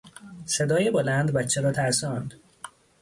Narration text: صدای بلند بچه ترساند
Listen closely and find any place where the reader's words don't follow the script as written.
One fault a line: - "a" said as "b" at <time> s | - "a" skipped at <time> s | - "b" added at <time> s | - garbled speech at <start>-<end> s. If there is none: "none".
- "را" added at 1.6 s